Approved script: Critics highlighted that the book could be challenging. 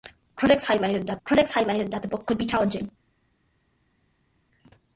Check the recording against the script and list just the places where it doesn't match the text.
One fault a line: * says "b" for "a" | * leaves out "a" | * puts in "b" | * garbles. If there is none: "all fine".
* puts in "critics highlighted that"